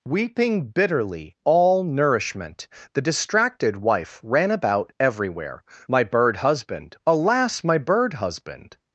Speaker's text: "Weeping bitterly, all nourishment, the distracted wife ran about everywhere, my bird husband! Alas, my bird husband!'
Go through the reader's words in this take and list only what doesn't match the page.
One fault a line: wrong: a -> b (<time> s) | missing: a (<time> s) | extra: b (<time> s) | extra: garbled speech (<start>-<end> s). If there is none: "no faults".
no faults